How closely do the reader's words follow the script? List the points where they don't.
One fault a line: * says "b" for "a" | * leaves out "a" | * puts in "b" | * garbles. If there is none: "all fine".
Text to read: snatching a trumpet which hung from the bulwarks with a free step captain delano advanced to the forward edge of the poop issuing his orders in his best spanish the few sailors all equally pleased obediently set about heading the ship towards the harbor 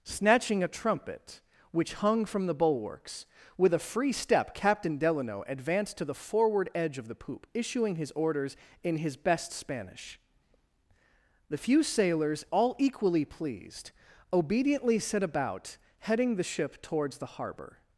all fine